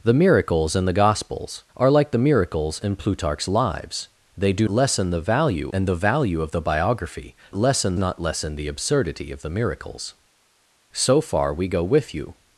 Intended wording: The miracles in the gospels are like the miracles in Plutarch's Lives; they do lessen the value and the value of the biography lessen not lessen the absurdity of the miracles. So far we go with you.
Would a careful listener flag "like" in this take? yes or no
no